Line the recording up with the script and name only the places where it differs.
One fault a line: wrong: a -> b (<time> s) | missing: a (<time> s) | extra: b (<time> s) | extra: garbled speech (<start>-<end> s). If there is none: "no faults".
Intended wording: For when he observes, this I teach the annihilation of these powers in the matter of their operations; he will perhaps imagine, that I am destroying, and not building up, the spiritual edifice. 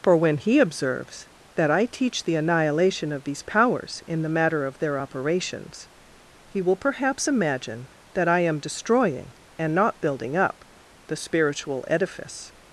wrong: this -> that (1.6 s)